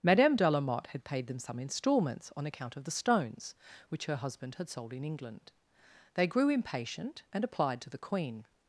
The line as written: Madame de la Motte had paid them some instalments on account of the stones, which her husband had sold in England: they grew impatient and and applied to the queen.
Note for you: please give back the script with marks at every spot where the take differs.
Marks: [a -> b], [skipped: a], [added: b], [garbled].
Madame de la Motte had paid them some instalments on account of the stones, which her husband had sold in England: they grew impatient and [skipped: and] applied to the queen.